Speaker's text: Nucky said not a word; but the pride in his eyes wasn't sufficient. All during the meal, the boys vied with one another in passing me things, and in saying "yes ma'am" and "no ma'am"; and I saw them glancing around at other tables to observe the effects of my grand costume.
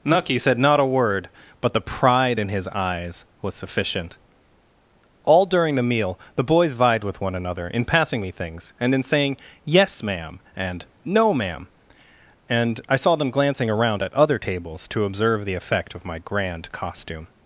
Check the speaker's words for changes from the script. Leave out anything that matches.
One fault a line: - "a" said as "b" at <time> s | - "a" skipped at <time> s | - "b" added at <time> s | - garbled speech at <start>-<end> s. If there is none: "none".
- "wasn't" said as "was" at 3.4 s
- "effects" said as "effect" at 15.5 s